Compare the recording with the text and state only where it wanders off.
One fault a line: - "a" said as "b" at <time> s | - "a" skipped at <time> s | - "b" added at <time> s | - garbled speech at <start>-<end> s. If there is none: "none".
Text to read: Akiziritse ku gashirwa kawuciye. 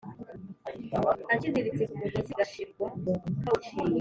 - "mugozi" added at 2.0 s